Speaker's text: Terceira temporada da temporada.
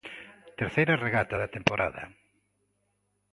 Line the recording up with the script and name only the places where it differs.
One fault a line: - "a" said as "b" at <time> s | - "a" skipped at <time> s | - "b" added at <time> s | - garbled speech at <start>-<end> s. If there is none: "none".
- "temporada" said as "regata" at 1.1 s